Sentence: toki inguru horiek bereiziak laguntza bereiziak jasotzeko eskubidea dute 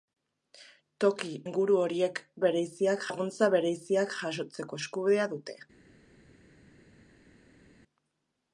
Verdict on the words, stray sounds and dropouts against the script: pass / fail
pass